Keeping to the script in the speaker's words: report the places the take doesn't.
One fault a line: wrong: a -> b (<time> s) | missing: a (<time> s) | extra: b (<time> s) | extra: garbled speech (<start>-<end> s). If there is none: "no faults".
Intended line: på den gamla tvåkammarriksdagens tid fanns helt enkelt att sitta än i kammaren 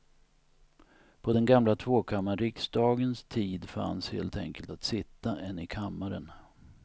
no faults